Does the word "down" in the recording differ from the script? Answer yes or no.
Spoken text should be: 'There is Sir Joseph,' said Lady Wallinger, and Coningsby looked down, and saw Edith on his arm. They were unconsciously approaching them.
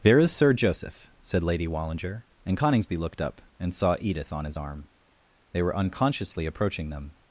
yes